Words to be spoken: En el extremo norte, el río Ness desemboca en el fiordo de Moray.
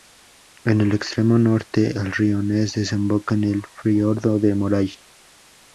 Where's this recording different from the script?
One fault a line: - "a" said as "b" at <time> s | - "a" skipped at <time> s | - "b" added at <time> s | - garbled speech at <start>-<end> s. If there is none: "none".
none